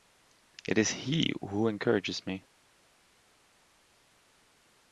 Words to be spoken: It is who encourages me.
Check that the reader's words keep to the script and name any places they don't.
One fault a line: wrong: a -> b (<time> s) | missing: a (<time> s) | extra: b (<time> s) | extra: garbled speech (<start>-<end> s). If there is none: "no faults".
extra: he (0.9 s)